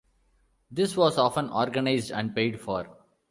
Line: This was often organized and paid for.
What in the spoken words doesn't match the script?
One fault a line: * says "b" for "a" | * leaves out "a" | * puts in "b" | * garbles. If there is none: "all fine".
all fine